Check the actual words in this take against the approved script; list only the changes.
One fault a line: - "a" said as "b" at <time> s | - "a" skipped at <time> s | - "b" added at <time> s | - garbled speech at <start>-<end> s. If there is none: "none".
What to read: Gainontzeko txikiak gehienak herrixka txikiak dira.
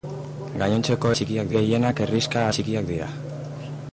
none